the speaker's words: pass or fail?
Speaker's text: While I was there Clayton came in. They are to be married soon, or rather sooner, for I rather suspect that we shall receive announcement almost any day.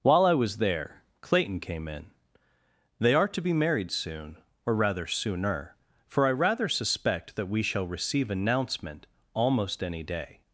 pass